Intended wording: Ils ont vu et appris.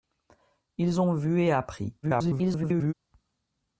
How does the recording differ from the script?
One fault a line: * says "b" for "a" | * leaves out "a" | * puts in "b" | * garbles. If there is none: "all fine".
* garbles